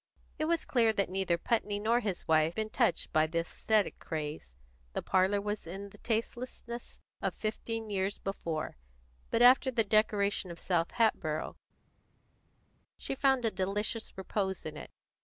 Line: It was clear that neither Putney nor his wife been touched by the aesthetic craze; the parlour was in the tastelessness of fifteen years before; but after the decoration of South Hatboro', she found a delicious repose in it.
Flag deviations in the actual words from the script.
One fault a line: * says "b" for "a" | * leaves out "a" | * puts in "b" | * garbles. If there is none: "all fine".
all fine